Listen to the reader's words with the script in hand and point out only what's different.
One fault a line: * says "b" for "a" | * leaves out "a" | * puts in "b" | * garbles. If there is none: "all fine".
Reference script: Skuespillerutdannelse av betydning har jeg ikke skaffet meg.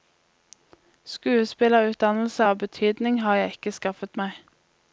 all fine